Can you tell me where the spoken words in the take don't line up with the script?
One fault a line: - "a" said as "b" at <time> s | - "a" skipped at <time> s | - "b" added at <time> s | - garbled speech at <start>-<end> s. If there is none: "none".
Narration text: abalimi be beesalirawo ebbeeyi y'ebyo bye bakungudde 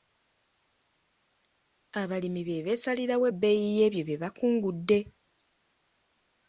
none